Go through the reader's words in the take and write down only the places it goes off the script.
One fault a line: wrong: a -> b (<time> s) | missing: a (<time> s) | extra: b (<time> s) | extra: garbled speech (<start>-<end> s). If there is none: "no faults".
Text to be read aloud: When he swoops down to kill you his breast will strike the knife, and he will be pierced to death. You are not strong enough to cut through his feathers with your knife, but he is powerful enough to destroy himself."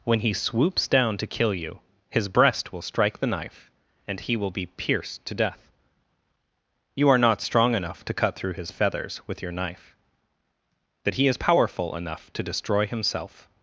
wrong: but -> that (11.0 s)